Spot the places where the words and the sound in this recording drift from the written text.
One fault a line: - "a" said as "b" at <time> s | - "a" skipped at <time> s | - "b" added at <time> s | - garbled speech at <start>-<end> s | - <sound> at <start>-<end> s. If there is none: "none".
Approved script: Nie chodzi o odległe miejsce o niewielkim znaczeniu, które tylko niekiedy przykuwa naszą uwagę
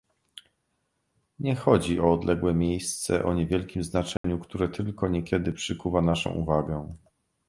- dropout at 4.2-4.2 s